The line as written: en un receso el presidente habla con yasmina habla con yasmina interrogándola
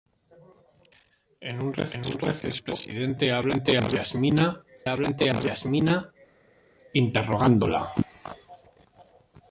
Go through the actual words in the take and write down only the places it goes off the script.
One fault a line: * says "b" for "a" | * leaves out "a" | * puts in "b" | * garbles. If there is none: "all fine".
all fine